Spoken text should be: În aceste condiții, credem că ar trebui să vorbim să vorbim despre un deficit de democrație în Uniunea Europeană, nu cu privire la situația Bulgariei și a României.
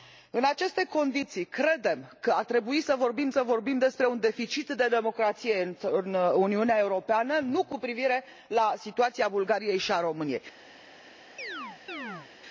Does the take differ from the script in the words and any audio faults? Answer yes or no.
yes